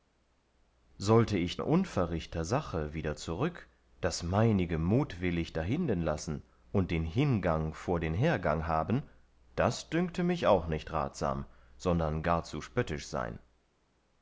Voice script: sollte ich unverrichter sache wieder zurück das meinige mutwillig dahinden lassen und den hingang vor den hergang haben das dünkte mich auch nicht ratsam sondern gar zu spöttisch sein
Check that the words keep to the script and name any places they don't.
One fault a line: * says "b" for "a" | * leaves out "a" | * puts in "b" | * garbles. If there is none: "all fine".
all fine